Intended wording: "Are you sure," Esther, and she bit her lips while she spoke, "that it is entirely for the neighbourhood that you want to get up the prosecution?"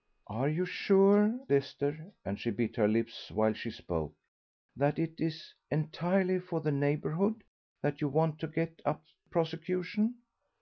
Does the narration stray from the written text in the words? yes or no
no